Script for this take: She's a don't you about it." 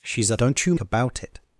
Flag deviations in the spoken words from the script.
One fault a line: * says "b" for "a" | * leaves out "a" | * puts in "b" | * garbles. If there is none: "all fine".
all fine